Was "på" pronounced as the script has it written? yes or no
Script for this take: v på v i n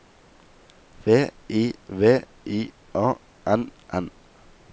no